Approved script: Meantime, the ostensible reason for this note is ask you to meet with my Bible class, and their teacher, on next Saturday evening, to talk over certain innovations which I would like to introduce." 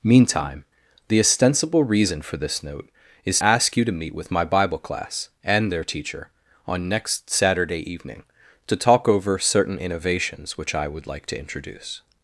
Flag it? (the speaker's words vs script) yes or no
no